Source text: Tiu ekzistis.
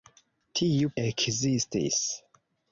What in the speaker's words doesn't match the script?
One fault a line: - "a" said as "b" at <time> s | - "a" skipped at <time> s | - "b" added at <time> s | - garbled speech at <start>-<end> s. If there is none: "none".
none